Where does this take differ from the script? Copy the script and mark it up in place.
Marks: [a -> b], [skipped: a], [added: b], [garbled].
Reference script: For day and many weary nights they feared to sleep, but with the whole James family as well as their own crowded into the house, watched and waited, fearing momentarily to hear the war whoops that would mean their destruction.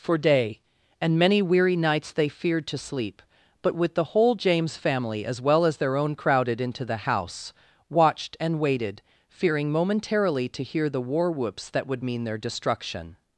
For day and many weary nights they feared to sleep, but with the whole James family as well as their own crowded into the house, watched and waited, fearing momentarily to hear the war whoops that would mean their destruction.